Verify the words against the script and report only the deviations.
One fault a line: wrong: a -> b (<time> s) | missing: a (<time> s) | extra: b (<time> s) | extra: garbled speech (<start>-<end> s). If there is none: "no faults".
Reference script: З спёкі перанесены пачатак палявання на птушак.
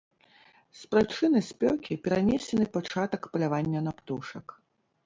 extra: прычыны (0.9 s)